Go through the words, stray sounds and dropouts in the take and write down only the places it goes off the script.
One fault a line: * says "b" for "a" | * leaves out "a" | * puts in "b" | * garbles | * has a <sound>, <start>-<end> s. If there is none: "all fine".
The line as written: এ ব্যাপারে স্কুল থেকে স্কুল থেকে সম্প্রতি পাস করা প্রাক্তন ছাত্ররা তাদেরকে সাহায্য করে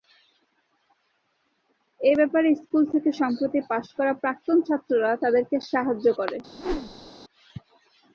* leaves out "স্কুল থেকে"
* has a whoosh, 6.5-7.1 s